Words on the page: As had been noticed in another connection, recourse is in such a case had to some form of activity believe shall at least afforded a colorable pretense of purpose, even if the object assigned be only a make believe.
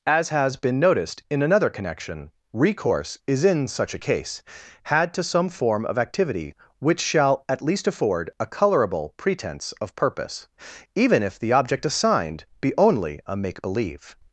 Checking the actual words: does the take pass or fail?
fail